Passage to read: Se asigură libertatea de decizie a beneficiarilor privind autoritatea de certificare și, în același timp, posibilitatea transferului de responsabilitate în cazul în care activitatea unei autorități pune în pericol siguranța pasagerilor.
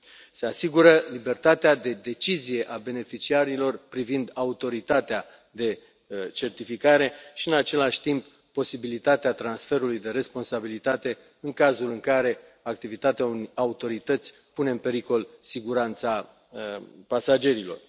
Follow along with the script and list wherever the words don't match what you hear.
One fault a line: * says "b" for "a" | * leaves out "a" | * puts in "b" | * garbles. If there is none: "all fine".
all fine